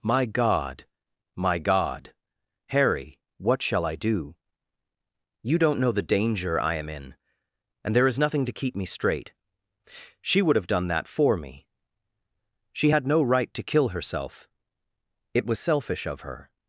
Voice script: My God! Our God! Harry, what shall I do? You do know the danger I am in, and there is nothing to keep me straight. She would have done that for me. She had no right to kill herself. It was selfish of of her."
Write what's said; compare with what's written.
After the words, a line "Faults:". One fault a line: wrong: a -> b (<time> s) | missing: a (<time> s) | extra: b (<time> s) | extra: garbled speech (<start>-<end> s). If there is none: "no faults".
My God! My God! Harry, what shall I do? You don't know the danger I am in, and there is nothing to keep me straight. She would have done that for me. She had no right to kill herself. It was selfish of her."
Faults:
wrong: Our -> My (1.4 s)
wrong: do -> don't (5.6 s)
missing: of (16.2 s)